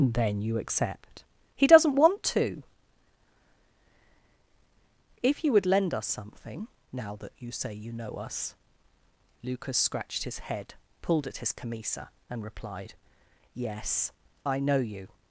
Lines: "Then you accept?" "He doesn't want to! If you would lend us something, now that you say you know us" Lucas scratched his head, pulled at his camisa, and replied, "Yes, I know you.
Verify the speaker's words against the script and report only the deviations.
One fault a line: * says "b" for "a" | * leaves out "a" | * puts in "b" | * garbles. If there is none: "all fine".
all fine